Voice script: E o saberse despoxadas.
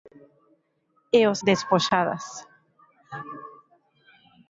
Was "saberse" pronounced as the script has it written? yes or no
no